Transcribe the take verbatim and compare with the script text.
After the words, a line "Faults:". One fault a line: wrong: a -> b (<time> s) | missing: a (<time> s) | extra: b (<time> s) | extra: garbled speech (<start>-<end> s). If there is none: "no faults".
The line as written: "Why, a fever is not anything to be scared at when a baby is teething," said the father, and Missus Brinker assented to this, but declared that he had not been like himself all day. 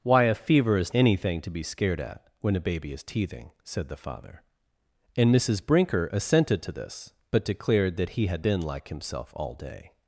"Why, a fever is anything to be scared at when a baby is teething," said the father, and Missus Brinker assented to this, but declared that he had been like himself all day.
Faults:
missing: not (0.9 s)
missing: not (8.5 s)